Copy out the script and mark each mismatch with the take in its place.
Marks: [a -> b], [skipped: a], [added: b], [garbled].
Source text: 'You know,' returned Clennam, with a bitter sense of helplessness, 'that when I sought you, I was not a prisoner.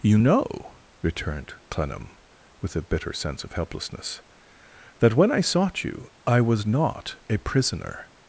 'You know,' returned Clennam, with a bitter sense of helplessness, 'that when I sought you, I was not a prisoner.